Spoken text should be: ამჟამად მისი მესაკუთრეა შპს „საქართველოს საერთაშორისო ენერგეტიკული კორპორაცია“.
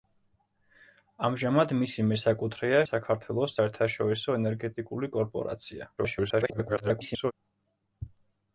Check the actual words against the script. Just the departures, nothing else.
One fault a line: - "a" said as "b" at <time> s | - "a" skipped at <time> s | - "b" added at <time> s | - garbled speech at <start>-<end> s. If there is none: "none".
- "შპს" skipped at 2.8 s
- garbled speech at 6.0-7.3 s